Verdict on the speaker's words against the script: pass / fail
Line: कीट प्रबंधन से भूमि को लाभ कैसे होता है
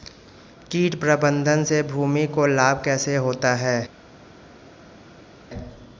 pass